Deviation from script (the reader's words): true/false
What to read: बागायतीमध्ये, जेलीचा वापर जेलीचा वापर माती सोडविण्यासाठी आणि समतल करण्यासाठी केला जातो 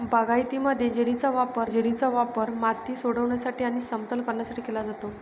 false